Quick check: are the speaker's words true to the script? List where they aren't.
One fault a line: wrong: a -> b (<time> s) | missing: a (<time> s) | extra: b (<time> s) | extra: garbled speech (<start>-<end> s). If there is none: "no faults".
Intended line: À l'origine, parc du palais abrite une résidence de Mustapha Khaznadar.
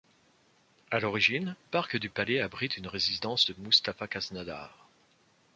no faults